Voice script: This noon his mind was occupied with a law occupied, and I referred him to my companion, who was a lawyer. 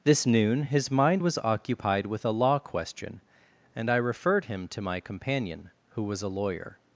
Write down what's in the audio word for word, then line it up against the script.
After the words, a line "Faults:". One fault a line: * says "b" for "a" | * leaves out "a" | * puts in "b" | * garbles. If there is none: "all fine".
This noon his mind was occupied with a law question, and I referred him to my companion, who was a lawyer.
Faults:
* says "question" for "occupied"